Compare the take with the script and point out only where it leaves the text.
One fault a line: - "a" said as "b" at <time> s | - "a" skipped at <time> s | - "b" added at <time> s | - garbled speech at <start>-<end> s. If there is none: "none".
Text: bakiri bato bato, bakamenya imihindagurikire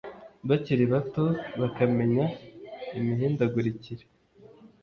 - "bato" skipped at 1.2 s